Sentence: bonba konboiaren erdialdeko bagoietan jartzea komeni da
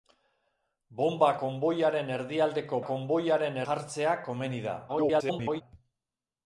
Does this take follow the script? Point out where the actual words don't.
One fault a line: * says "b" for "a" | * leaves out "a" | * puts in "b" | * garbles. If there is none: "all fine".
* says "konboiaren" for "bagoietan"
* garbles